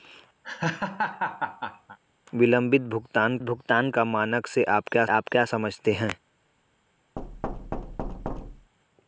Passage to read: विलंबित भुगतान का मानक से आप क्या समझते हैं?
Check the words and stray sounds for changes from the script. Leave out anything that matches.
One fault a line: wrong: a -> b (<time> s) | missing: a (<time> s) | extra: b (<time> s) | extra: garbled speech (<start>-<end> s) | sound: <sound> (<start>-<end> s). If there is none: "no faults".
sound: laugh (0.4-2.0 s)
extra: भुगतान (3.4 s)
extra: आप क्या (5.0 s)
sound: thud (7.2-8.7 s)